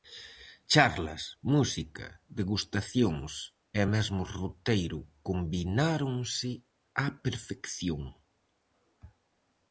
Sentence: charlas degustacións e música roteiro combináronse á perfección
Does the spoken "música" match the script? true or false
false